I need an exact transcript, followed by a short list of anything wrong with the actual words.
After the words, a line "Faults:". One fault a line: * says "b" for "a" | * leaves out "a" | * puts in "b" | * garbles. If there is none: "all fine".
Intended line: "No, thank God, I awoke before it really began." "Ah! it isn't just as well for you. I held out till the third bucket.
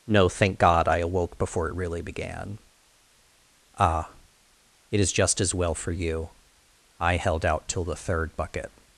"No, thank God, I awoke before it really began." "Ah! it is just as well for you. I held out till the third bucket.
Faults:
* says "is" for "isn't"